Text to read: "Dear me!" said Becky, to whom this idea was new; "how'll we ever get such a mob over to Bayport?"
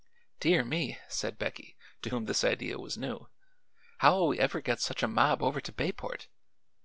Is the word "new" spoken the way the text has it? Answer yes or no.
yes